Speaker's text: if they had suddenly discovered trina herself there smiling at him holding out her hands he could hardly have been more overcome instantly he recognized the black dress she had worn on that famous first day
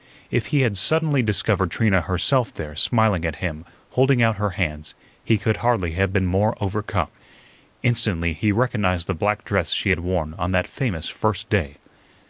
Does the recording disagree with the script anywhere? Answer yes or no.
yes